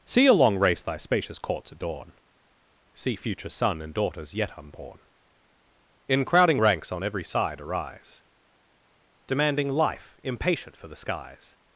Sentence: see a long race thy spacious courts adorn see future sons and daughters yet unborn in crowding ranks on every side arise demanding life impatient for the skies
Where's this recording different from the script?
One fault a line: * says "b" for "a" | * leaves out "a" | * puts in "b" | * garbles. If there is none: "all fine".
* says "son" for "sons"